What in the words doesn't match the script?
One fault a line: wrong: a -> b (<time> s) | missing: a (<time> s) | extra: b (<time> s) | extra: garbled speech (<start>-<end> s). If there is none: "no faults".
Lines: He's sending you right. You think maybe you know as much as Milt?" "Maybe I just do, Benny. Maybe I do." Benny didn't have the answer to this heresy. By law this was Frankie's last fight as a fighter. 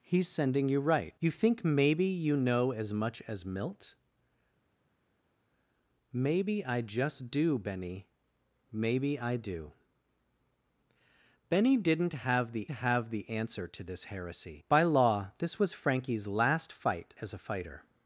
extra: have the (12.7 s)